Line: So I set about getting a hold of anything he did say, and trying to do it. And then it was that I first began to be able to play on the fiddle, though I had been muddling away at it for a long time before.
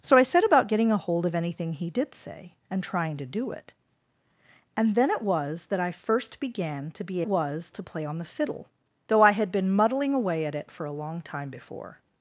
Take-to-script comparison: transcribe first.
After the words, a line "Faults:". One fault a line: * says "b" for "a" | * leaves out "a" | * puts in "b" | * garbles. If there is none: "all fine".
So I set about getting a hold of anything he did say, and trying to do it. And then it was that I first began to be was to play on the fiddle, though I had been muddling away at it for a long time before.
Faults:
* says "was" for "able"